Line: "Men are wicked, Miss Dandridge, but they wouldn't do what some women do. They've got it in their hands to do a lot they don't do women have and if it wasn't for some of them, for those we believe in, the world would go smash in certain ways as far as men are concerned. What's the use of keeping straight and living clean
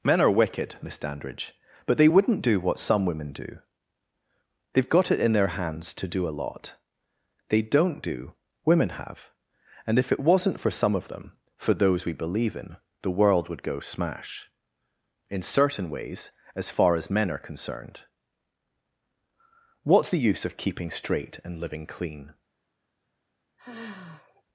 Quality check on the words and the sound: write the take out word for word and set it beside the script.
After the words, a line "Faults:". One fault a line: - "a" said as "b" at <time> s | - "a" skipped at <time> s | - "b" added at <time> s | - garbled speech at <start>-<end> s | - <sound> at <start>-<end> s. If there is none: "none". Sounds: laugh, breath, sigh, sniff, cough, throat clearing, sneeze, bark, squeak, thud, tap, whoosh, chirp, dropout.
"Men are wicked, Miss Dandridge, but they wouldn't do what some women do. They've got it in their hands to do a lot they don't do women have and if it wasn't for some of them, for those we believe in, the world would go smash in certain ways as far as men are concerned. What's the use of keeping straight and living clean
Faults:
- sigh at 23.6-24.4 s